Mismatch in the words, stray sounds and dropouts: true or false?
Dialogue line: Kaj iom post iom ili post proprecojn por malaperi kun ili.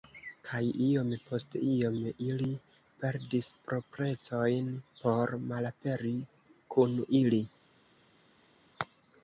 true